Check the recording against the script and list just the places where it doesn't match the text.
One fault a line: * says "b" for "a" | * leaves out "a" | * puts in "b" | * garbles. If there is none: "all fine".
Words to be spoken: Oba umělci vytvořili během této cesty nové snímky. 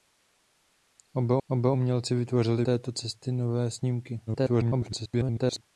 * puts in "oba"
* leaves out "během"
* garbles